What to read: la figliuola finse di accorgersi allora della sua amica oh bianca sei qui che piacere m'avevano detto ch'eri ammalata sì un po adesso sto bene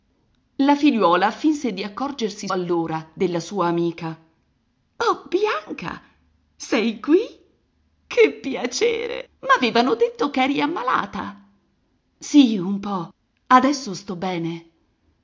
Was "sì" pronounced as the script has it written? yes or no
yes